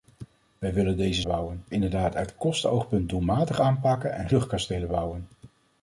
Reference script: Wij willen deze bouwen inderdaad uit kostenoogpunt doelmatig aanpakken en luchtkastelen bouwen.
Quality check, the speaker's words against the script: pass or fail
pass